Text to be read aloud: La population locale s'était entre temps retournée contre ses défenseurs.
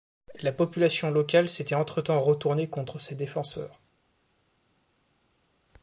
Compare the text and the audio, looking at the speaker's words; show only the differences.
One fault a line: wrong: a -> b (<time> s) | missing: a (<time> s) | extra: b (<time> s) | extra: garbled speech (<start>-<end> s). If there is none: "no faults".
no faults